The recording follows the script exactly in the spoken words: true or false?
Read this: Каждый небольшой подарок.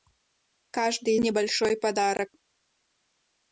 true